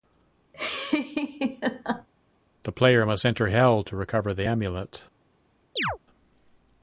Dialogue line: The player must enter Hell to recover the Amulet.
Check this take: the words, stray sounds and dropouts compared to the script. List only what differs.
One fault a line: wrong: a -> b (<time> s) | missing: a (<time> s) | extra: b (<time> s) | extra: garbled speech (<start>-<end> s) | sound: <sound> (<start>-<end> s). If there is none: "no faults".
sound: laugh (0.5-2.1 s)
sound: chirp (5.8-6.0 s)